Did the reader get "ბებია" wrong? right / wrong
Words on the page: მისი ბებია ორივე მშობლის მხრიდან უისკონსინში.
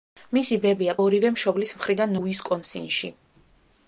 right